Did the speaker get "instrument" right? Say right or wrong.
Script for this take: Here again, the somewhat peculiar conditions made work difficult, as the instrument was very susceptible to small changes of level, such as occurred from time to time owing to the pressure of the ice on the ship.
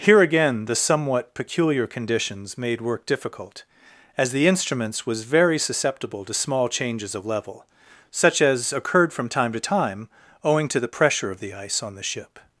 wrong